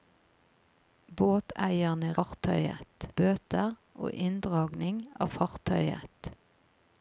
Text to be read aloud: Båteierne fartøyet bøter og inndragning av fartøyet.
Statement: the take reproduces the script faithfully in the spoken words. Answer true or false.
true